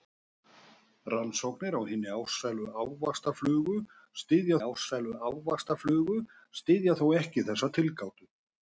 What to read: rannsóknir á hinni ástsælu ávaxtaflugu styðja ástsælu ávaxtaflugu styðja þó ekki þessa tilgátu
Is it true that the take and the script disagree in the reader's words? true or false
false